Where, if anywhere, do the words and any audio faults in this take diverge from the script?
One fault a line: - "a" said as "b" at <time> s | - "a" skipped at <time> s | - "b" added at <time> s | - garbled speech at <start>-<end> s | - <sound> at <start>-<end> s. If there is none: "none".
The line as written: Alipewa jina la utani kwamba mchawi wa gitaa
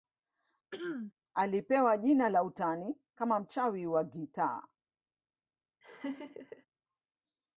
- throat clearing at 0.7-1.1 s
- "kwamba" said as "kama" at 3.1 s
- laugh at 5.8-6.7 s